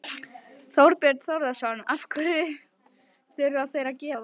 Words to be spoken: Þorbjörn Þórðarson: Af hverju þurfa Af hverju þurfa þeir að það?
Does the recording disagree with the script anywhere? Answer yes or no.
yes